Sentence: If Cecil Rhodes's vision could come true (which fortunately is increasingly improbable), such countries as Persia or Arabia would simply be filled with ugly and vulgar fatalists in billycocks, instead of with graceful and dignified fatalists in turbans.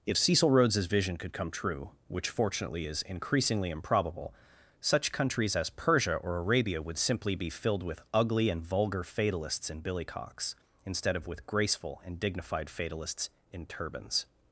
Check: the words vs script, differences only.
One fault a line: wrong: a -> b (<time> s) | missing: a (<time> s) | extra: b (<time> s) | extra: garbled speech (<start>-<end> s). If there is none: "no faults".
no faults